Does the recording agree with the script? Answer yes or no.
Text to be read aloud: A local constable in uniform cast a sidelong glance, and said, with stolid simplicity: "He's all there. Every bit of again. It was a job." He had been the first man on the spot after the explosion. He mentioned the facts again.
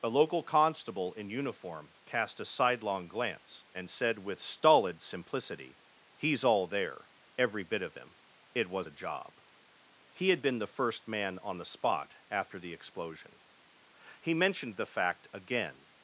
no